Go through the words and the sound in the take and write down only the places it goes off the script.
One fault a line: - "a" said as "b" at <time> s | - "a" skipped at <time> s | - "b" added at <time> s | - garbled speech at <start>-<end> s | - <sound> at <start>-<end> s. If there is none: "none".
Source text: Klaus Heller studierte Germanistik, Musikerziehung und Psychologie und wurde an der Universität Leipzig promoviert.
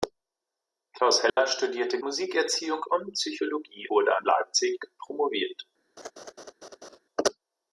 - dropout at 1.3-1.4 s
- "Germanistik" skipped at 2.0 s
- "und" skipped at 3.9 s
- "der Universität" skipped at 4.3 s
- laugh at 6.0-7.0 s